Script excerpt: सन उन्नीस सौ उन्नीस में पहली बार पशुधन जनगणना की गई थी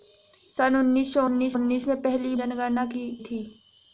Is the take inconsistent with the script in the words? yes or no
yes